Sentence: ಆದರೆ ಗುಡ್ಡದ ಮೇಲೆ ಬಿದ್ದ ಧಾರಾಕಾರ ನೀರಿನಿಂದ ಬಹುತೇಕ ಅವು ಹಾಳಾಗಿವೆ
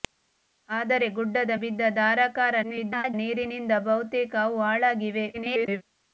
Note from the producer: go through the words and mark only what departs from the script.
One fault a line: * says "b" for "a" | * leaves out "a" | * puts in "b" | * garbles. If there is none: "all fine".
* leaves out "ಮೇಲೆ"
* garbles
* garbles